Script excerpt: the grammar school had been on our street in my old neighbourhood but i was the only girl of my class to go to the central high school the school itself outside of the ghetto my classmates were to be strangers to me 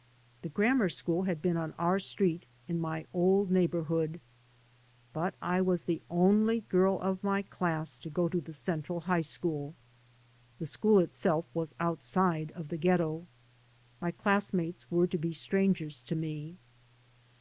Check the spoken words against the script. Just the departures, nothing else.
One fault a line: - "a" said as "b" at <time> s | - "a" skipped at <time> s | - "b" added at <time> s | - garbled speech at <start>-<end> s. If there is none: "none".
- "was" added at 11.5 s